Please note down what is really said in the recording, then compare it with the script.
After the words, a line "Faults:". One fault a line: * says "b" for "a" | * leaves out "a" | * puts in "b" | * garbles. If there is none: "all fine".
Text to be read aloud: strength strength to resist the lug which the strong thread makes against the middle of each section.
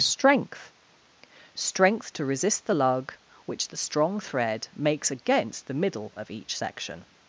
strength strength to resist the lug which the strong thread makes against the middle of each section.
Faults:
all fine